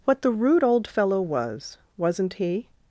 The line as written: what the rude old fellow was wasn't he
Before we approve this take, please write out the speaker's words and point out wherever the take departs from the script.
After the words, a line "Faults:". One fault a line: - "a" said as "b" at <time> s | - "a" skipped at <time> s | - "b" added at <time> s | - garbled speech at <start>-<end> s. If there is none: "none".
what the rude old fellow was wasn't he
Faults:
none